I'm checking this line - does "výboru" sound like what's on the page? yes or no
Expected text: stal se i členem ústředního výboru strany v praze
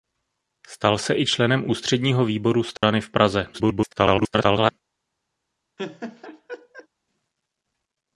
yes